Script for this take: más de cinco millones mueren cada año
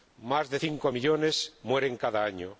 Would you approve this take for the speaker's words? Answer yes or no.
yes